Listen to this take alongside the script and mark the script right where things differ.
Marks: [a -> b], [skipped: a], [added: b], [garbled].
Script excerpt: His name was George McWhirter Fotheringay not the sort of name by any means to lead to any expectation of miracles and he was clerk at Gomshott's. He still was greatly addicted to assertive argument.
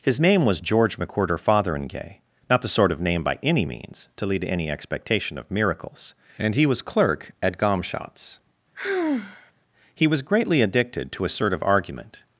His name was George McWhirter Fotheringay not the sort of name by any means to lead to any expectation of miracles and he was clerk at Gomshott's. He [skipped: still] was greatly addicted to assertive argument.